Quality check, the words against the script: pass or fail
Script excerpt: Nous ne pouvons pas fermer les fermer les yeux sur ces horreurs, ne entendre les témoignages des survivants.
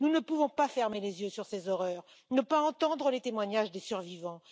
fail